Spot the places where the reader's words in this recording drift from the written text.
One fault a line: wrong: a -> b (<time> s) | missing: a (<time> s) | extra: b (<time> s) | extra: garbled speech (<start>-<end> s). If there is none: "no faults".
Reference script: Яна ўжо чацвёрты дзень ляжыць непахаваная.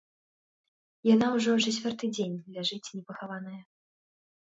no faults